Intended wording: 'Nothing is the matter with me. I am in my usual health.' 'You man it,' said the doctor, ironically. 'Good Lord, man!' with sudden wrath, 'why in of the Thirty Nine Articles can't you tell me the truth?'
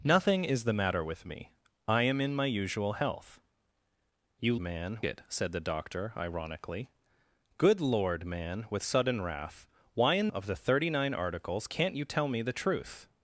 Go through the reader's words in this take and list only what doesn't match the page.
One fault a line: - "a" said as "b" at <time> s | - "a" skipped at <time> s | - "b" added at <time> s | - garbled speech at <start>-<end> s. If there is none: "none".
none